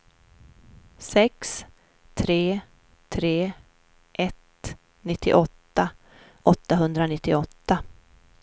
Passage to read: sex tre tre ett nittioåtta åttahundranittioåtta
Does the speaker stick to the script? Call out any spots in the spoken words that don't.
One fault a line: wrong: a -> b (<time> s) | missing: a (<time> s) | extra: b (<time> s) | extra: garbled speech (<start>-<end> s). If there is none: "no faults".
no faults